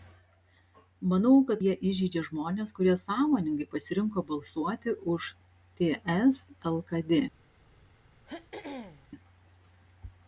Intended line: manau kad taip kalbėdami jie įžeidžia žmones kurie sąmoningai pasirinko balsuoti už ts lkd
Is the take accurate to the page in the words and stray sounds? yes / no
no